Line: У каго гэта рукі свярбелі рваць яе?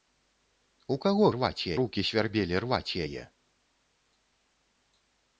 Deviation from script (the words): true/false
true